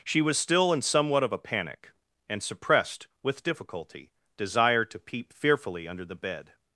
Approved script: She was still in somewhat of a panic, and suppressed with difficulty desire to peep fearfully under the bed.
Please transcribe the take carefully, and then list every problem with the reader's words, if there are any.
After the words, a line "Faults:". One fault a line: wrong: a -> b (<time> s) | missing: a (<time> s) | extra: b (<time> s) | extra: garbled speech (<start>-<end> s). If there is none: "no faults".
She was still in somewhat of a panic, and suppressed with difficulty desire to peep fearfully under the bed.
Faults:
no faults